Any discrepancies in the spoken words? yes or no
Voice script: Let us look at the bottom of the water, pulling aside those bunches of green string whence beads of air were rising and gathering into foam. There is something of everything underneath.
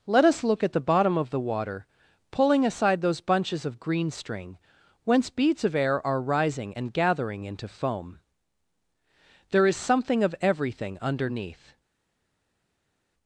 yes